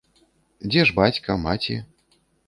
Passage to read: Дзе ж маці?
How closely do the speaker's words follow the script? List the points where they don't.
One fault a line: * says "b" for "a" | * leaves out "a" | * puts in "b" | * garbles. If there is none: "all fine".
* puts in "бацька"